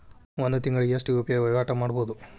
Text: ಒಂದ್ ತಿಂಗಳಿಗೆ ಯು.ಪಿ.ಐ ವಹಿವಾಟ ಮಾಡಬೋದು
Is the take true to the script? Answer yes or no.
no